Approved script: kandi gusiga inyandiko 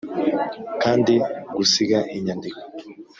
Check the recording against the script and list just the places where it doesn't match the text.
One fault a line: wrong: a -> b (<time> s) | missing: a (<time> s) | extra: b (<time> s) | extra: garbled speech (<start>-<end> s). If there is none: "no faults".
no faults